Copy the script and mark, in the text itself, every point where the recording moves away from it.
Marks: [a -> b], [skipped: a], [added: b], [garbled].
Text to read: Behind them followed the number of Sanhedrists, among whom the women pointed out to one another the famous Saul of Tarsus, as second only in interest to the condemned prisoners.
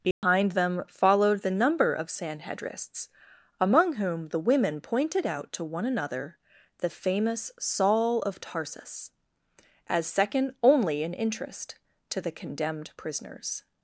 Behind them followed the number of Sanhedrists, among whom the women pointed out to one another the famous Saul of Tarsus, as second only in interest to the condemned prisoners.